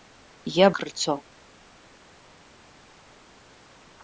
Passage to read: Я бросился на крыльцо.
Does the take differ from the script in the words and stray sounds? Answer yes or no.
yes